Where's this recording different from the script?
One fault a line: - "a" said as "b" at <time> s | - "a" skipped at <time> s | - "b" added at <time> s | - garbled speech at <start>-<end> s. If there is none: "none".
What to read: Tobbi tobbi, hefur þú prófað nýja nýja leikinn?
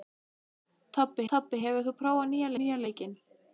none